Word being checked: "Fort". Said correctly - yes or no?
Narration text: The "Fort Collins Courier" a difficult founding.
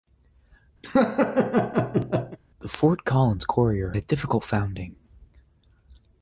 yes